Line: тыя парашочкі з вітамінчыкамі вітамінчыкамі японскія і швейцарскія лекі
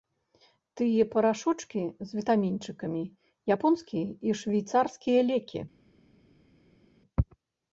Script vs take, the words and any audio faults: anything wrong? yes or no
yes